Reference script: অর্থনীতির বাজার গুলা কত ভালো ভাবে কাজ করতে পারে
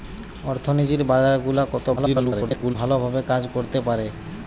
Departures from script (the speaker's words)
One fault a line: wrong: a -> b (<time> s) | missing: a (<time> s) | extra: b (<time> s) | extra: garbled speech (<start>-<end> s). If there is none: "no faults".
extra: garbled speech (2.0-2.8 s)